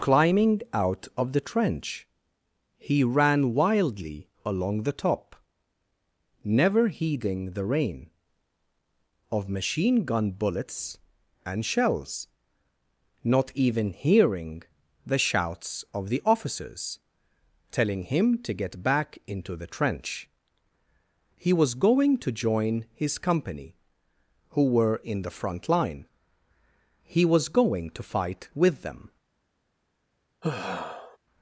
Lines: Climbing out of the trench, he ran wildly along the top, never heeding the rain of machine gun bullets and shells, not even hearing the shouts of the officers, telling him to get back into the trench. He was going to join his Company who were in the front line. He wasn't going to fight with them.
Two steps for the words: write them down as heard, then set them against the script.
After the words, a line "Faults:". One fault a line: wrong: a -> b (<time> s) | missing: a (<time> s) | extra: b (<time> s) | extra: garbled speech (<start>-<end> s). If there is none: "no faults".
Climbing out of the trench, he ran wildly along the top, never heeding the rain of machine gun bullets and shells, not even hearing the shouts of the officers, telling him to get back into the trench. He was going to join his Company who were in the front line. He was going to fight with them.
Faults:
wrong: wasn't -> was (27.2 s)